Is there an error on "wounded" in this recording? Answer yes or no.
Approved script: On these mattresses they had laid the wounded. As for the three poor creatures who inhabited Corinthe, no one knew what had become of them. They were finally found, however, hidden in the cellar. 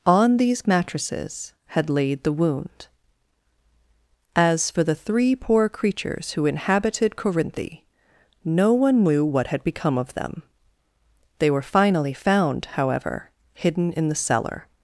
yes